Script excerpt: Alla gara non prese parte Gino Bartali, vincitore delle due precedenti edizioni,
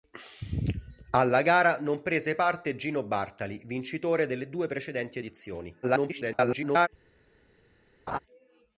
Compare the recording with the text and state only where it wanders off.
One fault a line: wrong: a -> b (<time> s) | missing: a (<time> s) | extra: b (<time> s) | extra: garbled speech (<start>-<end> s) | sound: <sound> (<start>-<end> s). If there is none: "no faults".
extra: garbled speech (5.8-6.9 s)
sound: laugh (8.1-8.2 s)